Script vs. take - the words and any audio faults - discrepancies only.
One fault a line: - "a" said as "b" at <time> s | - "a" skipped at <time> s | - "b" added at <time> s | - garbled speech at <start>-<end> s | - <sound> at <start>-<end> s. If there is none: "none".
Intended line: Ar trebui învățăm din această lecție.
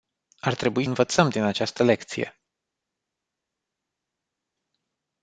none